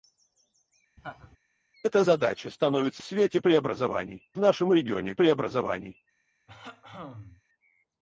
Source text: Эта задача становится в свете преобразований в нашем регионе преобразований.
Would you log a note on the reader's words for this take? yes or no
no